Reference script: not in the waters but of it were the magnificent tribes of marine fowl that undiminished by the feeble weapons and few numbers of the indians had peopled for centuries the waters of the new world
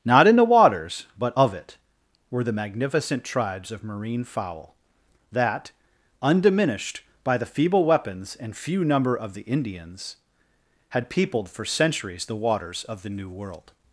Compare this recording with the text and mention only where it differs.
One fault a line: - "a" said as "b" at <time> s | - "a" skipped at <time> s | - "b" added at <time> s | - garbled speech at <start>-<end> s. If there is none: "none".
- "numbers" said as "number" at 8.8 s